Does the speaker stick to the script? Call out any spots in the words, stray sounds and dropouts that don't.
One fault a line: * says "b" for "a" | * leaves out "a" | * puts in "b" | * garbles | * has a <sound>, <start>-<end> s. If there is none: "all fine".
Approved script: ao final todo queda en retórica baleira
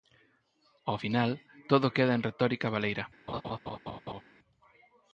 * has a laugh, 3.3-4.2 s